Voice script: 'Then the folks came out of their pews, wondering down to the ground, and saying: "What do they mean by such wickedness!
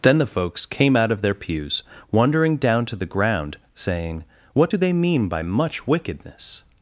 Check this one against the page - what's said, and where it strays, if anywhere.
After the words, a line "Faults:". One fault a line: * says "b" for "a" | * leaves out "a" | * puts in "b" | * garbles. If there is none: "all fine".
'Then the folks came out of their pews, wondering down to the ground, saying: "What do they mean by much wickedness!
Faults:
* leaves out "and"
* says "much" for "such"